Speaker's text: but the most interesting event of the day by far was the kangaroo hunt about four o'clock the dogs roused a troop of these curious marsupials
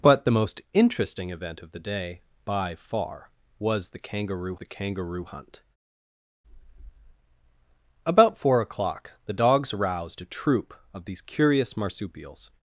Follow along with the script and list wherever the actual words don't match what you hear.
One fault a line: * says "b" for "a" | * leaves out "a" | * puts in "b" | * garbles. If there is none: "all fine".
* puts in "the kangaroo"